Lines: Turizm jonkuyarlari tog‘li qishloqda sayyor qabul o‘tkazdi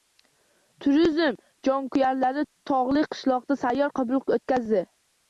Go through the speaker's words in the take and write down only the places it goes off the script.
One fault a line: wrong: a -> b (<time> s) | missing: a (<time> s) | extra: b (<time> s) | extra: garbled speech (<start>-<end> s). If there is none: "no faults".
no faults